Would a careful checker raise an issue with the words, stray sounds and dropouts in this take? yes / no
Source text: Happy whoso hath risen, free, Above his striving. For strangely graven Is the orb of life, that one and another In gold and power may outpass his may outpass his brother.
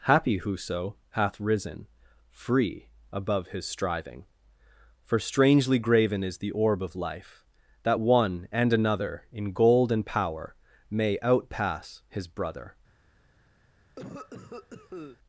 yes